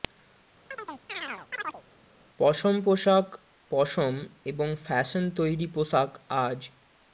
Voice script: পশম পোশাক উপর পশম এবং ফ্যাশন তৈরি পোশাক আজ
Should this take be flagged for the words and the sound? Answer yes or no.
yes